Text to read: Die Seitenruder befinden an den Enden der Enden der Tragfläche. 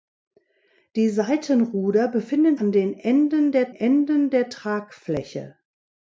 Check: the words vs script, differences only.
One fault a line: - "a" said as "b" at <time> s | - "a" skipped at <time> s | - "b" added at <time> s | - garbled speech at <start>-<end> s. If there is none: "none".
none